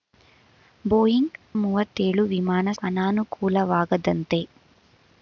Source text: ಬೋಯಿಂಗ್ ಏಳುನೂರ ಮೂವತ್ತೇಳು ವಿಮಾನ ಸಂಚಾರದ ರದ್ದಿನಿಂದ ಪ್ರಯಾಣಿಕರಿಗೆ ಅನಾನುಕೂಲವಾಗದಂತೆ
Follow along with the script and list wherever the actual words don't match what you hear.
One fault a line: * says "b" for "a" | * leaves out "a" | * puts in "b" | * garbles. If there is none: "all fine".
* leaves out "ಏಳುನೂರ"
* leaves out "ಸಂಚಾರದ ರದ್ದಿನಿಂದ ಪ್ರಯಾಣಿಕರಿಗೆ"